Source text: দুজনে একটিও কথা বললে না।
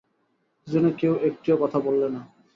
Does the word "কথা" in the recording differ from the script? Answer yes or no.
no